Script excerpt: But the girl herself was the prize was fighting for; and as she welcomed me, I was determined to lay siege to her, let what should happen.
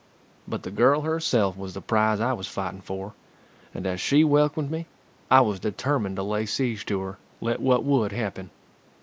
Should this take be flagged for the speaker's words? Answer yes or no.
yes